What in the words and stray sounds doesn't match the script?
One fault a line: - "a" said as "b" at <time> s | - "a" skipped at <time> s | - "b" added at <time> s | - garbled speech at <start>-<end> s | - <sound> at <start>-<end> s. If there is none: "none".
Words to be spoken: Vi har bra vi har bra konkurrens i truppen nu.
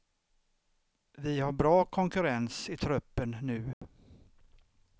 - "vi har bra" skipped at 1.9 s
- dropout at 3.7-3.8 s